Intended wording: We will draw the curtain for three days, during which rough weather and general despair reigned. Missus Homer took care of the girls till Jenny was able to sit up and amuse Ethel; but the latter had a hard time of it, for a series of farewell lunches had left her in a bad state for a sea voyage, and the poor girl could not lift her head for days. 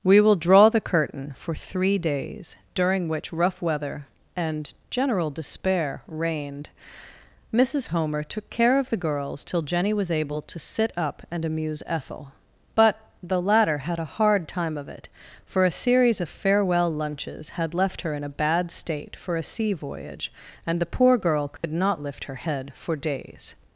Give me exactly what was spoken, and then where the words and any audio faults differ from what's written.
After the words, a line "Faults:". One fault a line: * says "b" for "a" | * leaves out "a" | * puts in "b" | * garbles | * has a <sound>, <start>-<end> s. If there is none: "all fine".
We will draw the curtain for three days, during which rough weather and general despair reigned. Missus Homer took care of the girls till Jenny was able to sit up and amuse Ethel; but the latter had a hard time of it, for a series of farewell lunches had left her in a bad state for a sea voyage, and the poor girl could not lift her head for days.
Faults:
* has a dropout, 21.6-21.6 s